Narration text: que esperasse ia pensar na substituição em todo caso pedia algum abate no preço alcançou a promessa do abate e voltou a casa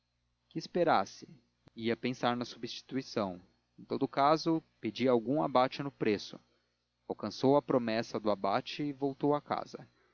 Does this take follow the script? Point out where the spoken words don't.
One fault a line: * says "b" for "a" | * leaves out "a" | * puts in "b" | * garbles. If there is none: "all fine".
all fine